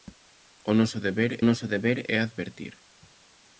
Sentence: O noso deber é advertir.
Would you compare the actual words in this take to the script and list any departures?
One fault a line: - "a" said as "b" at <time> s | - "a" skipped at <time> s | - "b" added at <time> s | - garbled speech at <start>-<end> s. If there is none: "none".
- "noso deber" added at 1.5 s